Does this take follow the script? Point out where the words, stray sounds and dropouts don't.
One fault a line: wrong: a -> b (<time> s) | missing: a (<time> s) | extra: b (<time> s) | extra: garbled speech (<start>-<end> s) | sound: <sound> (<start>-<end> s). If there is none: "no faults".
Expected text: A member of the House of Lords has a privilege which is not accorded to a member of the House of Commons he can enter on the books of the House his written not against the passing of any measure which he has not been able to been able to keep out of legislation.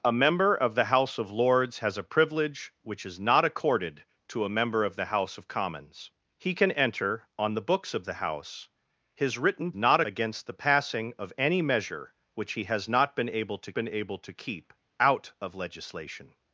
no faults